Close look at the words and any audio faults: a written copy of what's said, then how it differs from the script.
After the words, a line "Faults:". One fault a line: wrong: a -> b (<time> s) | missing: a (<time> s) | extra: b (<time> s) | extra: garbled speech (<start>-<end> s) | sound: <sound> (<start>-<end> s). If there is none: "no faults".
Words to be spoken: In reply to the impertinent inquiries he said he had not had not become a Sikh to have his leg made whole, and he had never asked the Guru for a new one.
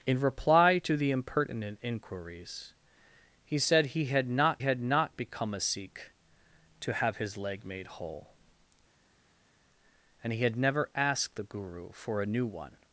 In reply to the impertinent inquiries he said he had not had not become a Sikh to have his leg made whole, and he had never asked the Guru for a new one.
Faults:
no faults